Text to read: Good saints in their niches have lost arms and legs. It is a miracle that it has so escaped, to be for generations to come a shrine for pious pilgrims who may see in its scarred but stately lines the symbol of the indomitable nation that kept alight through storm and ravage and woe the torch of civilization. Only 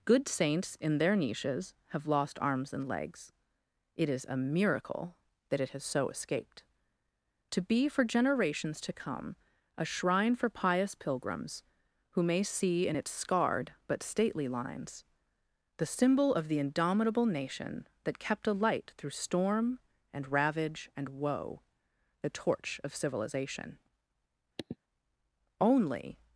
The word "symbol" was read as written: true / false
true